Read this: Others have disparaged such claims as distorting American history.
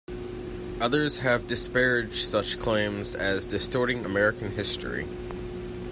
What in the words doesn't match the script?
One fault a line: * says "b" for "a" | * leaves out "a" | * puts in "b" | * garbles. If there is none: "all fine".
all fine